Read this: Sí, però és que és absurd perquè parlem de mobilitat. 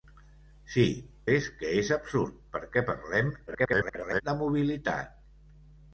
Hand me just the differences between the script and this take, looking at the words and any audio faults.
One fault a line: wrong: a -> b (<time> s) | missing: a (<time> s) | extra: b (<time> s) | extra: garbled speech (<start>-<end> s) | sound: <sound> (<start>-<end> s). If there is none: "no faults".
missing: però (0.8 s)
extra: garbled speech (3.5-4.2 s)